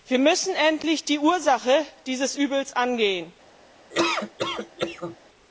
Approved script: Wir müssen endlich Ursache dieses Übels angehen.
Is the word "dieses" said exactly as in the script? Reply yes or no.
yes